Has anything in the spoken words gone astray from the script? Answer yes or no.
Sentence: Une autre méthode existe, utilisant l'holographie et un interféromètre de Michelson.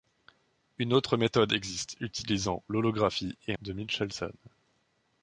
yes